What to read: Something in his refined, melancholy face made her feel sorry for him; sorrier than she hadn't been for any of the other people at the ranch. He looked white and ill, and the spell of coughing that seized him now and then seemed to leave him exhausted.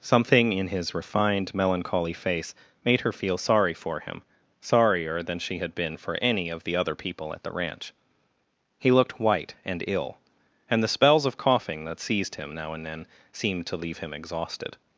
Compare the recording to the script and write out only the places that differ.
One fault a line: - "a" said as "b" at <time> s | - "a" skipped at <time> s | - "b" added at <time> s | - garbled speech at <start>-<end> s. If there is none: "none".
- "hadn't" said as "had" at 5.6 s
- "spell" said as "spells" at 10.9 s